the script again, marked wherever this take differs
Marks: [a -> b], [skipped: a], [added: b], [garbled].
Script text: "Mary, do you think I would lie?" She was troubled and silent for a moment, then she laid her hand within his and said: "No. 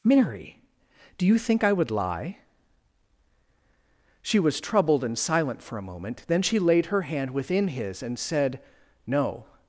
"Mary, do you think I would lie?" She was troubled and silent for a moment, then she laid her hand within his and said: "No.